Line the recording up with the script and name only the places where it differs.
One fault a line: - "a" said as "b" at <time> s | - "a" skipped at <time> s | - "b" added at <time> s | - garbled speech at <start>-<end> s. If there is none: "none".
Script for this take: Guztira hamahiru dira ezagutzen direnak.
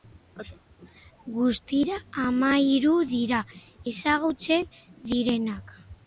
none